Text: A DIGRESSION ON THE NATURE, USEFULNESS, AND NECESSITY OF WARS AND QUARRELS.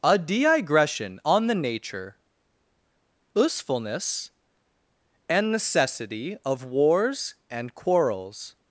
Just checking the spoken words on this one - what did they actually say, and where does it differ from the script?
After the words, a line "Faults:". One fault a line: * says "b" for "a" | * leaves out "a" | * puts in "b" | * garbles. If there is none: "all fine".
A DIGRESSION ON THE NATURE, USEFULNESS, AND NECESSITY OF WARS AND QUARRELS.
Faults:
all fine